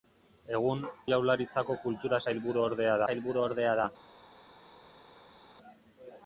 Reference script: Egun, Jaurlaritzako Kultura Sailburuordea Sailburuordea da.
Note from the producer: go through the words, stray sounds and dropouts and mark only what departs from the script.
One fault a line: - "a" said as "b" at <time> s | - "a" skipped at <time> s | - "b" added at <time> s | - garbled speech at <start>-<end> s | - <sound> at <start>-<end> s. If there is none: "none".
none